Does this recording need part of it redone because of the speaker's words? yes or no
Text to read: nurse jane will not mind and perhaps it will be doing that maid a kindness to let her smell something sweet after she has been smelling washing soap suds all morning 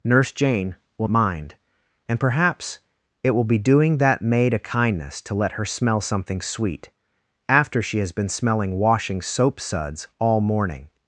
yes